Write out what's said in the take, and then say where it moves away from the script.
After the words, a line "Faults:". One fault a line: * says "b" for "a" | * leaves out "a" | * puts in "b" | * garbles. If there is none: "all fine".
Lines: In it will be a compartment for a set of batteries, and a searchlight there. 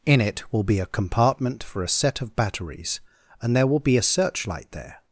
In it will be a compartment for a set of batteries, and there will be a searchlight there.
Faults:
* puts in "there will be"